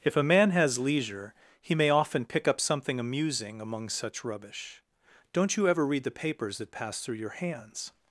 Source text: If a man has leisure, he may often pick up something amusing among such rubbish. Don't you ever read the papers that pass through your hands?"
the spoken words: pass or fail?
pass